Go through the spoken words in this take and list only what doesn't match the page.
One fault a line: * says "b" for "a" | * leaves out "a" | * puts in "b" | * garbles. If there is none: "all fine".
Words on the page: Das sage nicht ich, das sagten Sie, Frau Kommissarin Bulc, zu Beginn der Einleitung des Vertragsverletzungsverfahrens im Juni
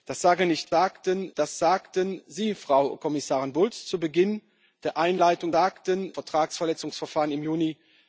* says "sagten" for "ich"
* says "sagten" for "des"